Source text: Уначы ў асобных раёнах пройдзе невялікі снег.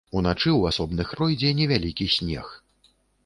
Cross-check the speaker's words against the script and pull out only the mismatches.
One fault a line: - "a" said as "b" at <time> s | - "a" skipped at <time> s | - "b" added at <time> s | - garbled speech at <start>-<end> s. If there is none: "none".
- "раёнах" skipped at 1.1 s